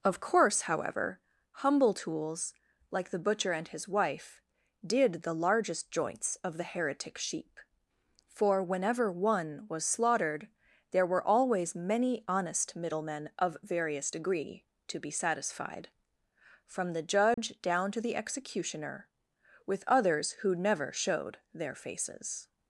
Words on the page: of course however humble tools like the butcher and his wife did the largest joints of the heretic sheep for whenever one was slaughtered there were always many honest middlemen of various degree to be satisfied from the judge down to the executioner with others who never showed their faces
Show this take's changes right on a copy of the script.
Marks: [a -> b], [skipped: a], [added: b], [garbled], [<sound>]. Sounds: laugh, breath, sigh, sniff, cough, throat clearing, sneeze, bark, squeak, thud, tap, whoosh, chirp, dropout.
of course however humble tools like the butcher and his wife did the largest joints of the heretic sheep for whenever one was slaughtered there were always many honest middlemen of various degree to be satisfied from the judge [dropout] down to the executioner with others who never showed their faces